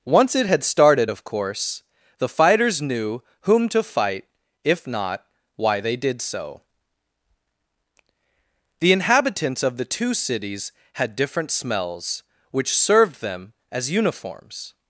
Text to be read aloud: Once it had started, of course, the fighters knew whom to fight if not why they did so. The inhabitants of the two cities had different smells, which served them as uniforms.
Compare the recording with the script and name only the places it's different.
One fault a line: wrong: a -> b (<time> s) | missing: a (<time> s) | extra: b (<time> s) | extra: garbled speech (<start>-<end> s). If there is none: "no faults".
no faults